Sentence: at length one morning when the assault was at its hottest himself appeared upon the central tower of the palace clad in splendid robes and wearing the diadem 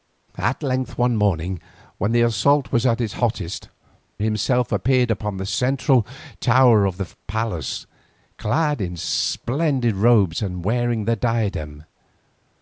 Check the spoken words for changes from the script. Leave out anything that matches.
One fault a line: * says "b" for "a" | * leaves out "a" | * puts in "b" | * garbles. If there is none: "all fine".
all fine